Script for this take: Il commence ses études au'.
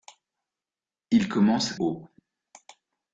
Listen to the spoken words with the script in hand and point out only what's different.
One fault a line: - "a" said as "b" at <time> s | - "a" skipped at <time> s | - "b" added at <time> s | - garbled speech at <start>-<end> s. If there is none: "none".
- "ses études" skipped at 1.7 s